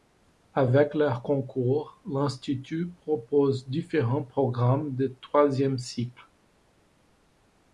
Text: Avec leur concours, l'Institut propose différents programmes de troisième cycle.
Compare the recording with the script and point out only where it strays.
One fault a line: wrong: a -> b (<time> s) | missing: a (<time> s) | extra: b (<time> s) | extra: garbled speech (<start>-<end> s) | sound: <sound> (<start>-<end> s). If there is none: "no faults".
no faults